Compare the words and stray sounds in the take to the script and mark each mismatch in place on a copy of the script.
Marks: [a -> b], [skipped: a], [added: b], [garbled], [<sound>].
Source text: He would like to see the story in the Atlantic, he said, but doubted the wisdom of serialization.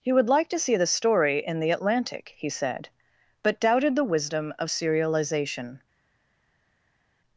He would like to see the story in the Atlantic, he said, but doubted the wisdom of serialization.